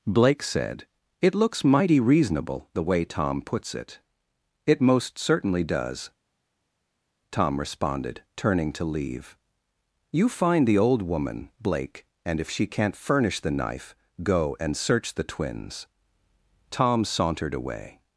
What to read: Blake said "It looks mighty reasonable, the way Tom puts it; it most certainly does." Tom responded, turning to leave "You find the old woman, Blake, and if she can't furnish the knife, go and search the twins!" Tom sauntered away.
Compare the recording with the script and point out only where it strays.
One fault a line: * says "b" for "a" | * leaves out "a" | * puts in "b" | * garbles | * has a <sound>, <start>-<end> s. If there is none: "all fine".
all fine